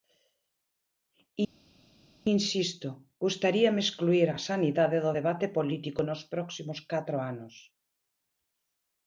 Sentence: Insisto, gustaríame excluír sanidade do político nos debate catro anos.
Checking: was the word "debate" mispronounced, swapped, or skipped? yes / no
yes